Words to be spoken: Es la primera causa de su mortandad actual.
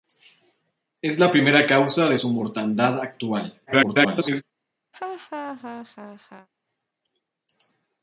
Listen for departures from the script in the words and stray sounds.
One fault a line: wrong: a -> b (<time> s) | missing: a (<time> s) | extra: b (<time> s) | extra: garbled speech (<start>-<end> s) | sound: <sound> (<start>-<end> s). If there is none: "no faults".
extra: garbled speech (3.7-4.4 s)
sound: laugh (4.9-6.5 s)